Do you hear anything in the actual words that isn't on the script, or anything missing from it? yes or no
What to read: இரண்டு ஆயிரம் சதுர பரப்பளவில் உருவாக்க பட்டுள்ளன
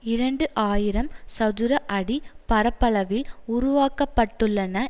yes